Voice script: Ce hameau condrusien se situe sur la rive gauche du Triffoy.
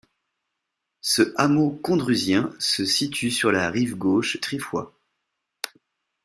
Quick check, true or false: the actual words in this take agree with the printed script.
false